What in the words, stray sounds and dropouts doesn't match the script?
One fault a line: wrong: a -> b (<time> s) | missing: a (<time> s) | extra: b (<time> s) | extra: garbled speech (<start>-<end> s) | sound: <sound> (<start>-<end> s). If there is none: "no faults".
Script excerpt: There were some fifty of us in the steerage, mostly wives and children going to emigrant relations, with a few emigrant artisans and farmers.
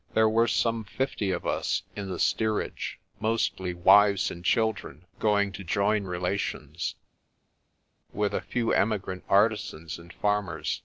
wrong: emigrant -> join (5.6 s)